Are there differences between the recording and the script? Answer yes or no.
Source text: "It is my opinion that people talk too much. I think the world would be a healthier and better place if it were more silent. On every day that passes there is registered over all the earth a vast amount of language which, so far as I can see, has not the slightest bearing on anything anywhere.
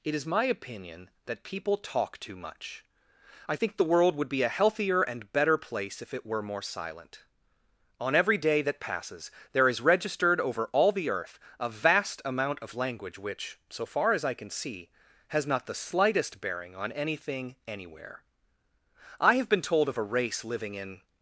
yes